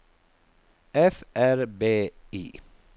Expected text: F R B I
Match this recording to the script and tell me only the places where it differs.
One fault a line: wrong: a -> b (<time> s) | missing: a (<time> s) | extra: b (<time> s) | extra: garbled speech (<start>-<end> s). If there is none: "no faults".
no faults